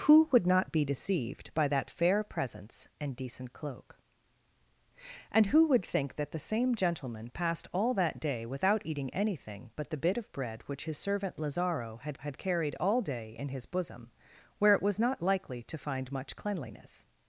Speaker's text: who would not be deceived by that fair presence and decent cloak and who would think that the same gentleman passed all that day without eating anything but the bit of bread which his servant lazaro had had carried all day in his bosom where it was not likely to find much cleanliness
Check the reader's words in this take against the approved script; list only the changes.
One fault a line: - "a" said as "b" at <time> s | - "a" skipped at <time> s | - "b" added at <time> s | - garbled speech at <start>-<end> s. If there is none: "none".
none